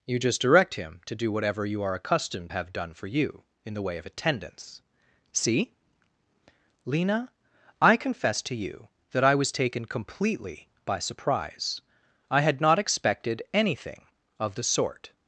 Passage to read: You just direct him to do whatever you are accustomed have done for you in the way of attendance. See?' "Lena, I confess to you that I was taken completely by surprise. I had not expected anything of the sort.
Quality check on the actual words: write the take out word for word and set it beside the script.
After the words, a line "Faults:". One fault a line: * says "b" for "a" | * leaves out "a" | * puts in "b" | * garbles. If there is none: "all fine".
You just direct him to do whatever you are accustomed have done for you in the way of attendance. See?' "Lena, I confess to you that I was taken completely by surprise. I had not expected anything of the sort.
Faults:
all fine